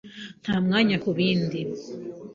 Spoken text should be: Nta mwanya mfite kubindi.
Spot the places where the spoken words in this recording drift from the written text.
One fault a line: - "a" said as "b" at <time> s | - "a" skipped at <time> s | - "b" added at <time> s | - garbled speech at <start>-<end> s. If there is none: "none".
- "mfite" skipped at 0.9 s